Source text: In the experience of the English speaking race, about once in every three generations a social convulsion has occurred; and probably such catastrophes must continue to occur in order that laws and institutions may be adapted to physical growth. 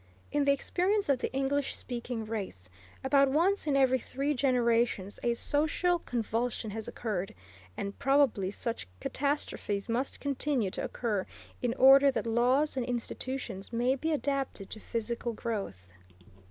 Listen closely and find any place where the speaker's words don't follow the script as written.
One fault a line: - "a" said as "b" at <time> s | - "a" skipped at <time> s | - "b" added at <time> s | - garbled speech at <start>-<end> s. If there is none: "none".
none